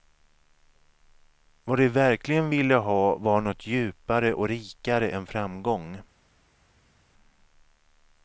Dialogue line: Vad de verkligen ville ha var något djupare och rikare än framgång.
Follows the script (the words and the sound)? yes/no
yes